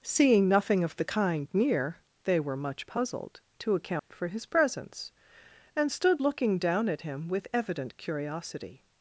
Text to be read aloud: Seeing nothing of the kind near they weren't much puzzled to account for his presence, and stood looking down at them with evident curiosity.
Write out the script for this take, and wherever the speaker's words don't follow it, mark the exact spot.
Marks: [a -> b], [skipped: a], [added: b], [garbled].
Seeing nothing of the kind near they [weren't -> were] much puzzled to account for his presence, and stood looking down at [them -> him] with evident curiosity.